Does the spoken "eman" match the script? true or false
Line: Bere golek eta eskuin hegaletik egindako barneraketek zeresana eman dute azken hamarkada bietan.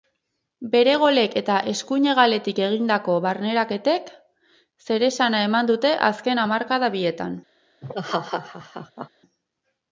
true